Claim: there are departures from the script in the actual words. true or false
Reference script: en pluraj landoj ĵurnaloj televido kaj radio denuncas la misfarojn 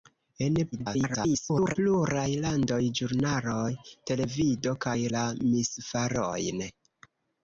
true